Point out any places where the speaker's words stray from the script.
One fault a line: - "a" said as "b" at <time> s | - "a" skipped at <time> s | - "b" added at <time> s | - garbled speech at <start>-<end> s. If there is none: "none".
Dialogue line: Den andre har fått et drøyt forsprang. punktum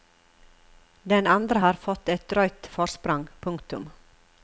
none